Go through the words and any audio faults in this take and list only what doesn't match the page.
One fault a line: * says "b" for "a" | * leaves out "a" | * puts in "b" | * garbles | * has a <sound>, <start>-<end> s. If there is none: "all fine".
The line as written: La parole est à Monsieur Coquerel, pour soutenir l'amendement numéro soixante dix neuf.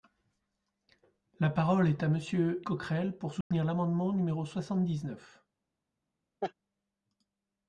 * has a dropout, 3.4-3.5 s
* has a laugh, 6.4-6.5 s